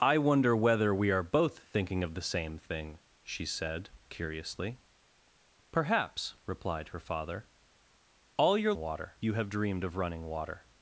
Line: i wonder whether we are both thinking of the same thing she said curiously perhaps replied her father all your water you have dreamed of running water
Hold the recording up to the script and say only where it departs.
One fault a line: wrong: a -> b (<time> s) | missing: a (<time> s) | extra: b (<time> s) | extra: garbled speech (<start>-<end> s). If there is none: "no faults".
no faults